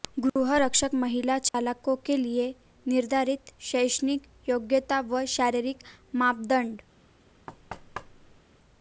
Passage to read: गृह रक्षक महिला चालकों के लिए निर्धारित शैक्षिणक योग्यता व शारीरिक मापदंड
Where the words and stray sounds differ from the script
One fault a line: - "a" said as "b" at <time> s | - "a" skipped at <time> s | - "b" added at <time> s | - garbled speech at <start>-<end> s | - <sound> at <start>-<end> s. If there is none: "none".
- dropout at 1.5-1.5 s
- thud at 7.5-8.4 s